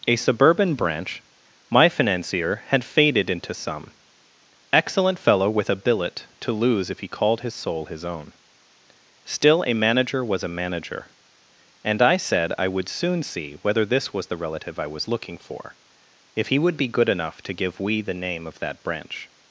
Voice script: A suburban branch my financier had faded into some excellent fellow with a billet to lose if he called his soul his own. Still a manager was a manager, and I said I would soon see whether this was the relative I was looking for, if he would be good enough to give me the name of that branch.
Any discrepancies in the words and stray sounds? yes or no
yes